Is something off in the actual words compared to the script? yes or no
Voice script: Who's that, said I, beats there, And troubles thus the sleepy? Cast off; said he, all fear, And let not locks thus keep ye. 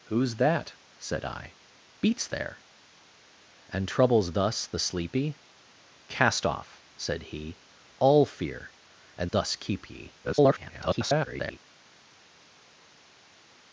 yes